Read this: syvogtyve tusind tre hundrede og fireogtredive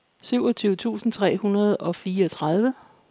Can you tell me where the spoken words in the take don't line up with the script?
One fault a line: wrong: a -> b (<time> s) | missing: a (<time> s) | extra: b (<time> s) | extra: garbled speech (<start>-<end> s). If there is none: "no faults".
no faults